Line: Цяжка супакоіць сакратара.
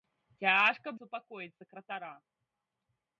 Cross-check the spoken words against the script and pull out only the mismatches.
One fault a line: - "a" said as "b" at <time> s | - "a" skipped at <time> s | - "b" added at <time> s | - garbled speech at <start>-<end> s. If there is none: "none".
none